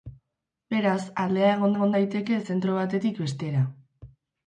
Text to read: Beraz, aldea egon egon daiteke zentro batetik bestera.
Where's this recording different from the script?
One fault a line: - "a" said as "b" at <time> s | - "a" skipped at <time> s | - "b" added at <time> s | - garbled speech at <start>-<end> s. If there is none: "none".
none